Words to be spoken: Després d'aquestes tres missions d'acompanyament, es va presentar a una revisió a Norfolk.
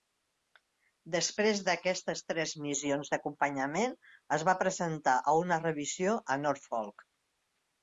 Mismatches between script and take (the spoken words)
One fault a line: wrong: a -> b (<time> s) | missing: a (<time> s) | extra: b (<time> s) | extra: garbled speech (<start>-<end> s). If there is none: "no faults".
no faults